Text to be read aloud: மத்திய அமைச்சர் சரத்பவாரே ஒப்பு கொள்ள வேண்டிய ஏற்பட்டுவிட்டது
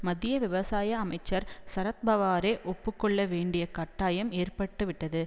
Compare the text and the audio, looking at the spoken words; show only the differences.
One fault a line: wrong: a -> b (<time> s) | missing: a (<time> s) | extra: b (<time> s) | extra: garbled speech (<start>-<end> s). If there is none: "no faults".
extra: விவசாய (0.4 s)
extra: கட்டாயம் (3.7 s)